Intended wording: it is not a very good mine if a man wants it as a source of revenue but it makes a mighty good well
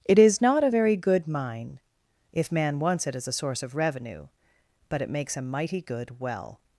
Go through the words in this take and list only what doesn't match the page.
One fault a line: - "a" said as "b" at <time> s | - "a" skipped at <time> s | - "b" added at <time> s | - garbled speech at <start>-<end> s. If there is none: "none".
- "a" skipped at 2.5 s